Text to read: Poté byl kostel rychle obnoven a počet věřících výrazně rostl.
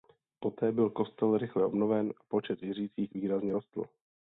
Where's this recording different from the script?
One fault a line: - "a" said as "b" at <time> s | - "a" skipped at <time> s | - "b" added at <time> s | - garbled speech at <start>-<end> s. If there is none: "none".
none